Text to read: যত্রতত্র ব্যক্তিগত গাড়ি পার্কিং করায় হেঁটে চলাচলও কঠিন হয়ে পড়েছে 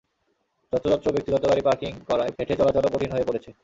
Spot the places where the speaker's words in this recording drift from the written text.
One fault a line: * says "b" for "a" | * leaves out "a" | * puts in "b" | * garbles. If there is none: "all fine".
all fine